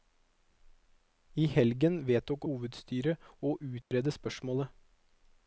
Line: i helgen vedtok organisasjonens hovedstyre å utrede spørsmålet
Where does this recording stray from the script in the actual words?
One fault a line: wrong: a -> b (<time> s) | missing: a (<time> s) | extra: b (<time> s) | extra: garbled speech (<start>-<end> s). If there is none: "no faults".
missing: organisasjonens (2.5 s)